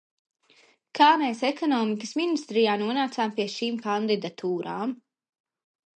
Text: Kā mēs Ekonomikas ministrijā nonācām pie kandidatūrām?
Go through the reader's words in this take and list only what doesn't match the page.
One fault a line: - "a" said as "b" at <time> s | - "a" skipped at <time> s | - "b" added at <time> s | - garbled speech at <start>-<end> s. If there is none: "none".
- "šīm" added at 3.6 s